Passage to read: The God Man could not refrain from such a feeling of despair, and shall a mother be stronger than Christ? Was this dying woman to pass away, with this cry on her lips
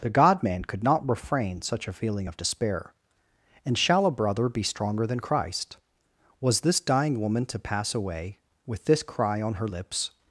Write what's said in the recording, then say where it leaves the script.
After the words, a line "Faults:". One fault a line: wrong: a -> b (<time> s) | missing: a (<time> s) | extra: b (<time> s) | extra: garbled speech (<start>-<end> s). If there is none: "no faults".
The God Man could not refrain such a feeling of despair, and shall a brother be stronger than Christ? Was this dying woman to pass away, with this cry on her lips
Faults:
missing: from (1.6 s)
wrong: mother -> brother (4.1 s)